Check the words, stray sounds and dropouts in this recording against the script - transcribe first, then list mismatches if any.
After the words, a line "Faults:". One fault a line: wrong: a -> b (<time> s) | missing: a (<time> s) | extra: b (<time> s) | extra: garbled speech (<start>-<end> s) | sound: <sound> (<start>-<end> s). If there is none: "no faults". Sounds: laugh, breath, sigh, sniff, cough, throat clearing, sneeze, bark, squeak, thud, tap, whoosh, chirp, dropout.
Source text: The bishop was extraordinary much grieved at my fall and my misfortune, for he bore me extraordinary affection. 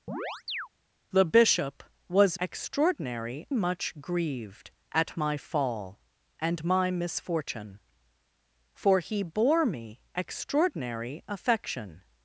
The bishop was extraordinary much grieved at my fall and my misfortune, for he bore me extraordinary affection.
Faults:
sound: chirp (0.1-0.7 s)